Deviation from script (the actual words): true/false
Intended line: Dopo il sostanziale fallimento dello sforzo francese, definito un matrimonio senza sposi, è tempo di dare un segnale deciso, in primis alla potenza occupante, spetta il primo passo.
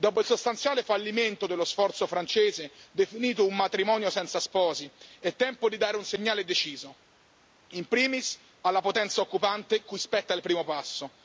true